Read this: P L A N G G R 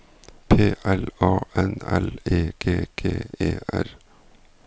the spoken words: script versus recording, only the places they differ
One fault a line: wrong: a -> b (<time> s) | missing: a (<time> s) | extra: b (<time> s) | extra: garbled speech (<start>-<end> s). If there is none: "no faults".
extra: L E (1.9 s)
extra: E (3.4 s)